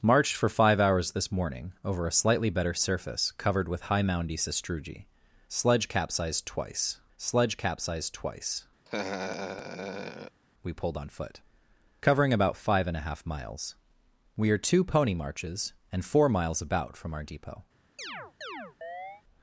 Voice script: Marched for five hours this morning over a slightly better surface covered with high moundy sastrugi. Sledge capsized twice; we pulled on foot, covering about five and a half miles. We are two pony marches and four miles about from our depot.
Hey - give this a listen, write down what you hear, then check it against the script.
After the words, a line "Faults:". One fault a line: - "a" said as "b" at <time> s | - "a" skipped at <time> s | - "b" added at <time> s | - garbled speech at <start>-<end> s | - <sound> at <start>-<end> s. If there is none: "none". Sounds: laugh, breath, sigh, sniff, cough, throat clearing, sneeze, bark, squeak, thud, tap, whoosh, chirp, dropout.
Marched for five hours this morning over a slightly better surface covered with high moundy sastrugi. Sledge capsized twice sledge capsized twice; we pulled on foot, covering about five and a half miles. We are two pony marches and four miles about from our depot.
Faults:
- "sledge capsized twice" added at 7.2 s
- laugh at 8.8-10.4 s
- chirp at 18.0-19.2 s